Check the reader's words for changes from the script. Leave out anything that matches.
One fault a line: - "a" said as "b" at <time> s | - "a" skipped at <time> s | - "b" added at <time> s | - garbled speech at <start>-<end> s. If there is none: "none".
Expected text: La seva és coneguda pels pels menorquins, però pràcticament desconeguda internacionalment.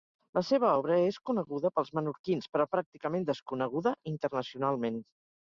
- "obra" added at 0.7 s
- "pels" skipped at 1.9 s